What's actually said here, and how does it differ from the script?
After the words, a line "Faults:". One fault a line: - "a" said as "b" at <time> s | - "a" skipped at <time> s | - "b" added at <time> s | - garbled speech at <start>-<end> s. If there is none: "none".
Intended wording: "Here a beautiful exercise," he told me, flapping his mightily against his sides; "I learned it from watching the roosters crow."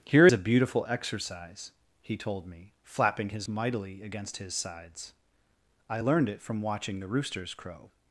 "Here a beautiful exercise," he told me, flapping his mightily against his sides; "I learned it from watching the roosters crow."
Faults:
none